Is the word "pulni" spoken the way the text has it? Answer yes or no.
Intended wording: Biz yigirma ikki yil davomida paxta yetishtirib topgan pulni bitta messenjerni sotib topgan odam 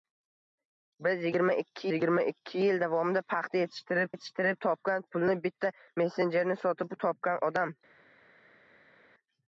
yes